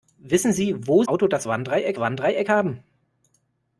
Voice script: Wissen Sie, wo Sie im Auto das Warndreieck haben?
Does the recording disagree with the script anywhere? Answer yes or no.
yes